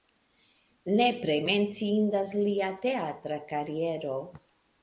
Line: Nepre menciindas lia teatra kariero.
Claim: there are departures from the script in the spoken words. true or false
false